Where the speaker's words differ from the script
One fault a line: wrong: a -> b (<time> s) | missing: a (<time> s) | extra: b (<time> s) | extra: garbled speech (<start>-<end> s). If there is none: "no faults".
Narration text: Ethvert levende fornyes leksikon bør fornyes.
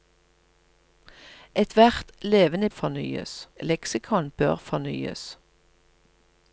no faults